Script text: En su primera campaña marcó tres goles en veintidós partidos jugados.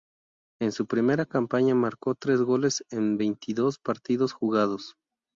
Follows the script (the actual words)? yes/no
yes